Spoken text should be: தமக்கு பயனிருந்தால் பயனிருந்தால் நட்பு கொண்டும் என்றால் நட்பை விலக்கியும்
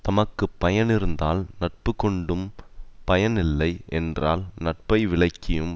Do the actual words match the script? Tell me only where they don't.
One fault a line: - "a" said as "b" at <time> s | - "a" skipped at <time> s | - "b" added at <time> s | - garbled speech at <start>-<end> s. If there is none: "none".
- "பயனிருந்தால்" skipped at 1.4 s
- "பயன் இல்லை" added at 3.0 s